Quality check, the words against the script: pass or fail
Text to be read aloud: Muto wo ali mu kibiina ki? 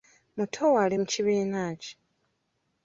pass